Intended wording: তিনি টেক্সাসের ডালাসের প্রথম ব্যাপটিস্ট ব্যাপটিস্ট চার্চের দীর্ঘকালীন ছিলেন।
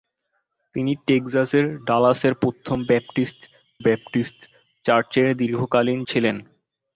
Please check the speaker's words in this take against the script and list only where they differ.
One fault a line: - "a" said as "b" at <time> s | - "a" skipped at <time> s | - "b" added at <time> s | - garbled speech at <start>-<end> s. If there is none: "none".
none